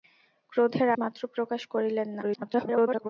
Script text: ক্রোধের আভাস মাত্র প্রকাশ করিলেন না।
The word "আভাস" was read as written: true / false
false